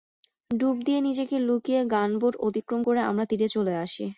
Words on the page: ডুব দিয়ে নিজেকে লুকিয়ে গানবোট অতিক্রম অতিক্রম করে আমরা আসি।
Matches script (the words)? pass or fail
fail